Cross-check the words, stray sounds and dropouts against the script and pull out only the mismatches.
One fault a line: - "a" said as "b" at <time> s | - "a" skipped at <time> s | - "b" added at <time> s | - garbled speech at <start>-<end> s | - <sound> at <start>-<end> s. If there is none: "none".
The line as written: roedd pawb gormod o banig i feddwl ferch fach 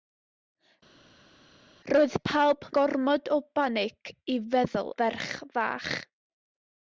none